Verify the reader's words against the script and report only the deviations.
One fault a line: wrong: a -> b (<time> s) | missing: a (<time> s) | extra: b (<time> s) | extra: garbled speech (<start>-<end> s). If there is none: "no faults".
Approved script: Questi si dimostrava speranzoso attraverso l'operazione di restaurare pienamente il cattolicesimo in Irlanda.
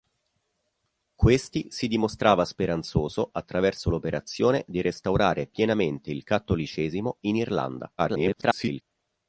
extra: garbled speech (8.0-8.8 s)